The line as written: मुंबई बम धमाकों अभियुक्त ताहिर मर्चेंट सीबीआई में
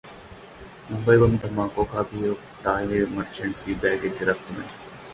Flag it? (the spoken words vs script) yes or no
yes